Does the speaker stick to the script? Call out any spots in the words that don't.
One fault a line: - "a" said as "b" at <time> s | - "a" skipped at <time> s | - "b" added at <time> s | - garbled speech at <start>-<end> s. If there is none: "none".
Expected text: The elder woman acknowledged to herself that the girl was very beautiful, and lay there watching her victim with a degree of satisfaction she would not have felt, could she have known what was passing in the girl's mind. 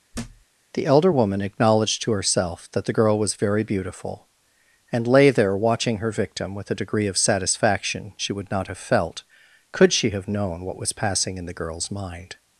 none